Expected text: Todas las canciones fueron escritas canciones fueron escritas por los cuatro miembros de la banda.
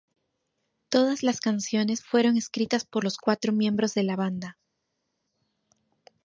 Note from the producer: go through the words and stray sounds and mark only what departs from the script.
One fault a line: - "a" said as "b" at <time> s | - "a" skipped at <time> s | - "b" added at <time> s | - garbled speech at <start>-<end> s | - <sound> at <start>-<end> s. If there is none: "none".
- "canciones fueron escritas" skipped at 2.9 s